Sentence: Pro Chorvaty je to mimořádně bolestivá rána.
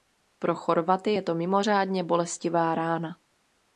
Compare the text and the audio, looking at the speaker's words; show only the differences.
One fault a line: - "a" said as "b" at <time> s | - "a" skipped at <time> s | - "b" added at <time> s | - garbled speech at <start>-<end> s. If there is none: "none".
none